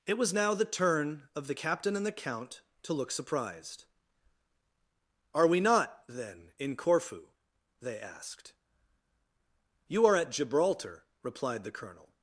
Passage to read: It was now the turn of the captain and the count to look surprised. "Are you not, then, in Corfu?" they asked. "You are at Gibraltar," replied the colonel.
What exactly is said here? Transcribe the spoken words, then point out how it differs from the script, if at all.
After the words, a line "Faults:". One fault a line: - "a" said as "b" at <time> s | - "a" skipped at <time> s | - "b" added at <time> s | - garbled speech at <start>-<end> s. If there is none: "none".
It was now the turn of the captain and the count to look surprised. "Are we not, then, in Corfu?" they asked. "You are at Gibraltar," replied the colonel.
Faults:
- "you" said as "we" at 5.5 s